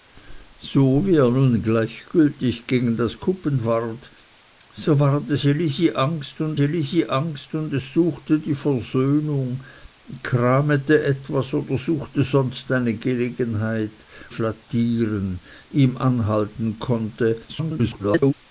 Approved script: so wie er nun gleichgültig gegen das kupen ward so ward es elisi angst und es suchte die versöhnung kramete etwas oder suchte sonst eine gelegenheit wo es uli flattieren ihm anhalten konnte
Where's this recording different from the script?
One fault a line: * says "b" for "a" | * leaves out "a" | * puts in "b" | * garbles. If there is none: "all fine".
* puts in "elisi angst und"
* leaves out "wo es uli"
* garbles